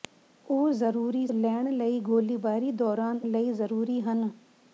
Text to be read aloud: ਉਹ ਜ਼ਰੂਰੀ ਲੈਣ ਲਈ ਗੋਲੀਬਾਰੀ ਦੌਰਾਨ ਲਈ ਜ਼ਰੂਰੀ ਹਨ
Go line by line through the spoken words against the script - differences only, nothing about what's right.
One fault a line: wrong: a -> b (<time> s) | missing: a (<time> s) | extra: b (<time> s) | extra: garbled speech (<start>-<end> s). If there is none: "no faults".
no faults